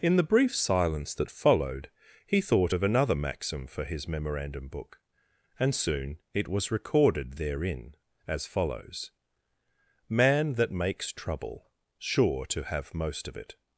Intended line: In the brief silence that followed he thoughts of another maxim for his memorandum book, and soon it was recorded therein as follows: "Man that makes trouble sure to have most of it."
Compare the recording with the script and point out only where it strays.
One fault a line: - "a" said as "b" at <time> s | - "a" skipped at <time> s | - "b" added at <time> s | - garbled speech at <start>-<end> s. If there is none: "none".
- "thoughts" said as "thought" at 2.4 s